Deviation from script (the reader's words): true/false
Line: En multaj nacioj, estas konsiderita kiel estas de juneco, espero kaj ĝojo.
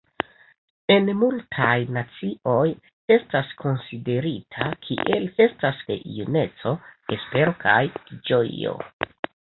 false